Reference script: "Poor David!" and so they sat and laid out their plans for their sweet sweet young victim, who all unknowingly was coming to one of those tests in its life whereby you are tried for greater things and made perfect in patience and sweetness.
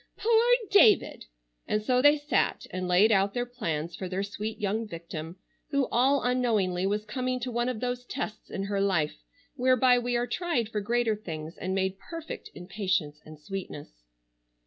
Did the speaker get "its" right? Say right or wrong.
wrong